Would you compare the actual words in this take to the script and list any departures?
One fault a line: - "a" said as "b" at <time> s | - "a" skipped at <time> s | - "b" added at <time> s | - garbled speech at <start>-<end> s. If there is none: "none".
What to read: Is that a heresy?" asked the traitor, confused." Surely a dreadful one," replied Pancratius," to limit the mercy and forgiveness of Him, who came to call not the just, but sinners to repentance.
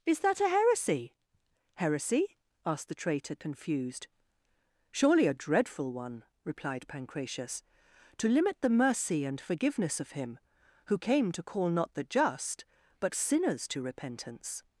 - "heresy" added at 1.8 s